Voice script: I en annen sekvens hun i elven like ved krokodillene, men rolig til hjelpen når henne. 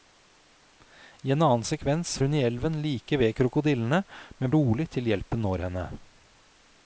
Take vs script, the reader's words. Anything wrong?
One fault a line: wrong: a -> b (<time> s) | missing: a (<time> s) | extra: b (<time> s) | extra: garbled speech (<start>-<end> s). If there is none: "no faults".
no faults